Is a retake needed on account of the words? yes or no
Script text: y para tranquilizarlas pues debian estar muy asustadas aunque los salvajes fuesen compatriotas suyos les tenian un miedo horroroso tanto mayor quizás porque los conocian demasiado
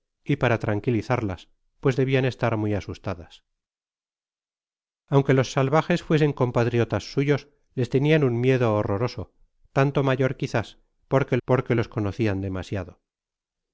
yes